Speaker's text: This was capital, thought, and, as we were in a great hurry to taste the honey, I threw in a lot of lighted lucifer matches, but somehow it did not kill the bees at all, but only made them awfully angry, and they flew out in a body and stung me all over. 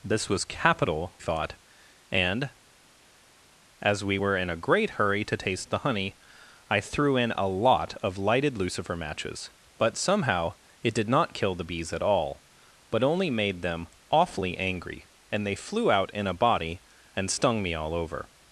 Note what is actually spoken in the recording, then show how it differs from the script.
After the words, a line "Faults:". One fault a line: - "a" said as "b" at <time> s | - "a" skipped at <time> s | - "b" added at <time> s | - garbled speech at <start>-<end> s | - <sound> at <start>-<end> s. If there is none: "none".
This was capital, thought, and, as we were in a great hurry to taste the honey, I threw in a lot of lighted lucifer matches, but somehow it did not kill the bees at all, but only made them awfully angry, and they flew out in a body and stung me all over.
Faults:
none